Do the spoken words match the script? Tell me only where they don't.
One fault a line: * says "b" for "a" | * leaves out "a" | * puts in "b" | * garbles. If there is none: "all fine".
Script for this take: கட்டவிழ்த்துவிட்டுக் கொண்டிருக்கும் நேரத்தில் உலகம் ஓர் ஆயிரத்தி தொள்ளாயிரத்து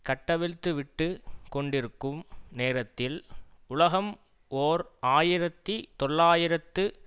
all fine